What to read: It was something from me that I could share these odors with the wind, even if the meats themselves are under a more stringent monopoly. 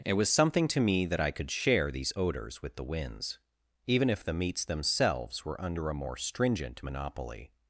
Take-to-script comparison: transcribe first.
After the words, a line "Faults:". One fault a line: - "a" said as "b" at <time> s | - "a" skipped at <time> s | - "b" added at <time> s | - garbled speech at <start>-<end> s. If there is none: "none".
It was something to me that I could share these odors with the winds, even if the meats themselves were under a more stringent monopoly.
Faults:
- "from" said as "to" at 0.7 s
- "wind" said as "winds" at 2.8 s
- "are" said as "were" at 5.4 s